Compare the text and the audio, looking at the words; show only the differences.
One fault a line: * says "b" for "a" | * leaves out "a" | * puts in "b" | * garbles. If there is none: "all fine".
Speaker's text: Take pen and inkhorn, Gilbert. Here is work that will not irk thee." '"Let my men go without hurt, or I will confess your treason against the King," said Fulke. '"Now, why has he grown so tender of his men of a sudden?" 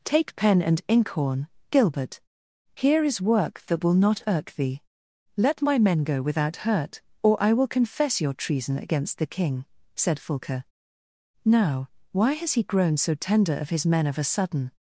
all fine